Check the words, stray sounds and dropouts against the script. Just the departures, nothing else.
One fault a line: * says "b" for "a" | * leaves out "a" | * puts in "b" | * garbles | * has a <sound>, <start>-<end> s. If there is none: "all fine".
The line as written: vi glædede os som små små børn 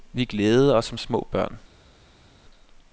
* leaves out "små"